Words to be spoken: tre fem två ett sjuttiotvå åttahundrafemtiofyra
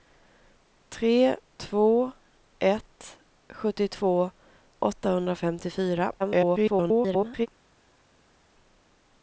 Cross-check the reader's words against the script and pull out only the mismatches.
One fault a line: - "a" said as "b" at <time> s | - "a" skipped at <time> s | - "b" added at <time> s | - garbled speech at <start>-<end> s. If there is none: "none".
- "fem" skipped at 1.4 s
- garbled speech at 6.2-7.5 s